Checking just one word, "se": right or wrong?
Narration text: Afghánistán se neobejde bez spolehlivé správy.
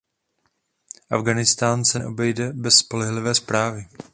right